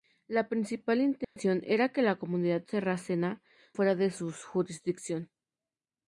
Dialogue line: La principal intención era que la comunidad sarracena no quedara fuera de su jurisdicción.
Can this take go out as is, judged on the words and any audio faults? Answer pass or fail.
fail